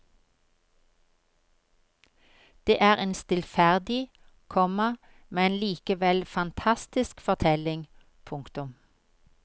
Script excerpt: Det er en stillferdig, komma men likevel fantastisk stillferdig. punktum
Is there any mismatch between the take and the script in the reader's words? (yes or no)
yes